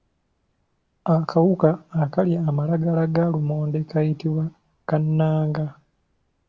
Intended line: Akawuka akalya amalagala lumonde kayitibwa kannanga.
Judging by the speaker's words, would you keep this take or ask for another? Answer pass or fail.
fail